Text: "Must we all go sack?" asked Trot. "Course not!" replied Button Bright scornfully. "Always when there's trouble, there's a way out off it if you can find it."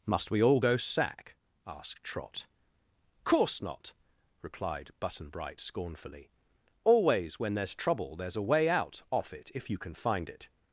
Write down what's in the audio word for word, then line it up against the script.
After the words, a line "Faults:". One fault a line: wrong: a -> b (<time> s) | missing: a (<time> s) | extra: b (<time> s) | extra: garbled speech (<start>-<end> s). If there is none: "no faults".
"Must we all go sack?" asked Trot. "Course not!" replied Button Bright scornfully. "Always when there's trouble, there's a way out off it if you can find it."
Faults:
no faults